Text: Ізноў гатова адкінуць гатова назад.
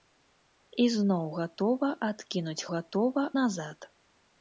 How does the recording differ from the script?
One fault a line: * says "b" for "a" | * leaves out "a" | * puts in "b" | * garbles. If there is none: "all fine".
all fine